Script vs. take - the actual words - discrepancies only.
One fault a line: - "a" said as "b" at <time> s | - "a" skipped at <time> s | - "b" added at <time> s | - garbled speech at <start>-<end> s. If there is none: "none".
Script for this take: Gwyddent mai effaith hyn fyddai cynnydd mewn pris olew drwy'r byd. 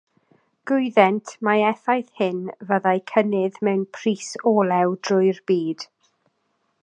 none